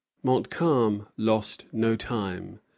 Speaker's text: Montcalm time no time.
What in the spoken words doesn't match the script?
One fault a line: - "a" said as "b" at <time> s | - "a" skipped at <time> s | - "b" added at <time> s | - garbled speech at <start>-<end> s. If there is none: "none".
- "time" said as "lost" at 1.1 s